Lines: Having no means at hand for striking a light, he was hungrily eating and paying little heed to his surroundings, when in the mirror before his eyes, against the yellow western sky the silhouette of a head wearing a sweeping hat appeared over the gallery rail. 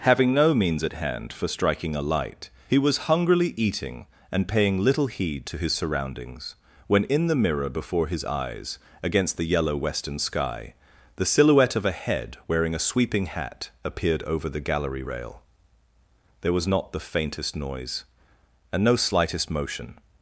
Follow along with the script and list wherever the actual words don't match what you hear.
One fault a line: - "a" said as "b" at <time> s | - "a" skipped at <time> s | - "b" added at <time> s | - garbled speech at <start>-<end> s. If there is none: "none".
- "There was not the faintest noise and no slightest motion" added at 16.4 s